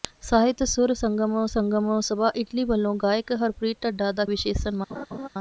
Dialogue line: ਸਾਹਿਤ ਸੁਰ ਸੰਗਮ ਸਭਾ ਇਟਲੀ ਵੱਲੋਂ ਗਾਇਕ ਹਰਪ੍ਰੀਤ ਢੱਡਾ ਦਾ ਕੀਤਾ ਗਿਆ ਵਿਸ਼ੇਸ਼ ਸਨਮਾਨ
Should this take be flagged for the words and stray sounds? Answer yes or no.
yes